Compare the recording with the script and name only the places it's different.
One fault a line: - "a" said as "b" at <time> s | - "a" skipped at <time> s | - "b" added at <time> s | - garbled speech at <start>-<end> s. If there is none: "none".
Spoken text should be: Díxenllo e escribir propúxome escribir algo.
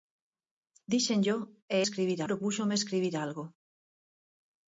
none